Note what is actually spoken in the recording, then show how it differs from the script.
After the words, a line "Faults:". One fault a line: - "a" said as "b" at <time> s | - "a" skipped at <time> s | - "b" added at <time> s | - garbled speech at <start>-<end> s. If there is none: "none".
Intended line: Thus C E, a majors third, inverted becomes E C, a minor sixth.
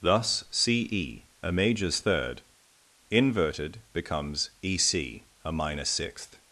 Thus C E, a majors third, inverted becomes E C, a minor sixth.
Faults:
none